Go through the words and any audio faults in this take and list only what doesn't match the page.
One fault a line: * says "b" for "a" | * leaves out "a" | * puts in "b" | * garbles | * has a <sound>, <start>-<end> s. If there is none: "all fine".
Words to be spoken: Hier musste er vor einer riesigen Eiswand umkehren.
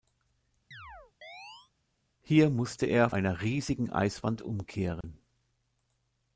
* has a chirp, 0.7-1.7 s
* leaves out "vor"
* has a dropout, 5.0-5.0 s